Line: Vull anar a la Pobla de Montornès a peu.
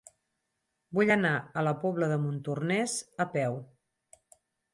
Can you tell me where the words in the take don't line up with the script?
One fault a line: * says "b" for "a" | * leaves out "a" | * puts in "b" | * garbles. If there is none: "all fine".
all fine